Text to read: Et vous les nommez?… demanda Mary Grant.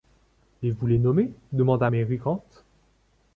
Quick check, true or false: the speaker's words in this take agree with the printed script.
true